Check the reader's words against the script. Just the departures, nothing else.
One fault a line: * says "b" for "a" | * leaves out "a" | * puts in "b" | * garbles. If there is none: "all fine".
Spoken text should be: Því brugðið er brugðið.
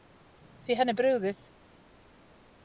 * says "henni" for "brugðið"